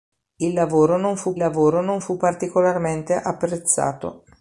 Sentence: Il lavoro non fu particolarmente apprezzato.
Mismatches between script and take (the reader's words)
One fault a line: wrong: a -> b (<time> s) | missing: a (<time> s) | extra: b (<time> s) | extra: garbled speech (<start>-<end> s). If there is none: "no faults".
extra: lavoro non fu (1.4 s)